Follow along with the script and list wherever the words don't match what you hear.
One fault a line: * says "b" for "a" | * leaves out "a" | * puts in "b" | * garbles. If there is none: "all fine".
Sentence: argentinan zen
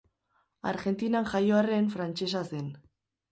* puts in "jaio arren frantsesa"